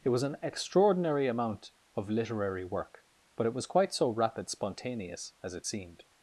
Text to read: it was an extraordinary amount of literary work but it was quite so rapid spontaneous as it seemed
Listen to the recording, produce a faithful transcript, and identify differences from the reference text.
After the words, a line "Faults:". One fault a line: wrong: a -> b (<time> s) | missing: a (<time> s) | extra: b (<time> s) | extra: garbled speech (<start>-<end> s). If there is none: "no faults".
it was an extraordinary amount of literary work but it was quite so rapid spontaneous as it seemed
Faults:
no faults